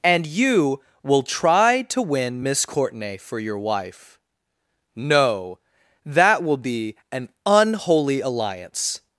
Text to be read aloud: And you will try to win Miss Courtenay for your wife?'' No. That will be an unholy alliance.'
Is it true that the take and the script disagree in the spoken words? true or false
false